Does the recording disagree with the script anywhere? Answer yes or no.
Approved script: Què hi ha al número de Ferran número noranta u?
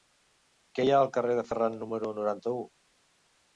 yes